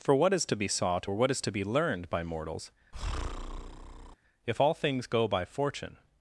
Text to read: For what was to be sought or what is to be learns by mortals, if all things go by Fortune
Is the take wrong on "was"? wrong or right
wrong